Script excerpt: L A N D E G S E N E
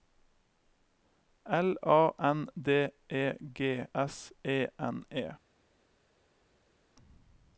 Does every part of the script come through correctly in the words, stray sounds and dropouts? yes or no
yes